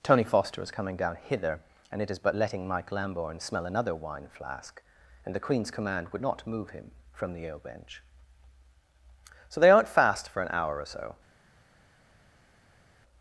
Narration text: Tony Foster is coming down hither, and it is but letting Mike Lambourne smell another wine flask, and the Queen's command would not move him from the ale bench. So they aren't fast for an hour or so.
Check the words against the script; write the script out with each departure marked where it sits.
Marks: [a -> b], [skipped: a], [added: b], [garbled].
Tony Foster is coming down hither, and it is but letting Mike Lambourne smell another wine flask, and the Queen's command would not move him from the ale bench. So they aren't fast for an hour or so.